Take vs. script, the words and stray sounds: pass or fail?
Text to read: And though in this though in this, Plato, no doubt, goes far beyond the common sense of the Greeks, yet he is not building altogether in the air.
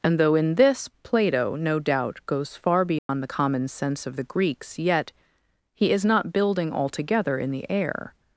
fail